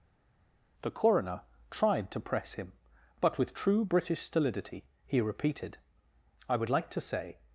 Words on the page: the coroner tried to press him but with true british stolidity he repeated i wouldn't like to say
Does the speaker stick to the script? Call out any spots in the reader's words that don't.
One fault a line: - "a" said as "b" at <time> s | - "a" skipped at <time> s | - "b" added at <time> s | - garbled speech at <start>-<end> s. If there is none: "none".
- "wouldn't" said as "would" at 6.6 s